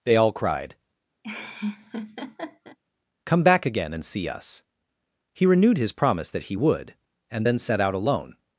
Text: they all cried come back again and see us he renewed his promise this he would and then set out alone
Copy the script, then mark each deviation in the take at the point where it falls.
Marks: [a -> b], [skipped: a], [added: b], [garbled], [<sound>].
they all cried [laugh] come back again and see us he renewed his promise [this -> that] he would and then set out alone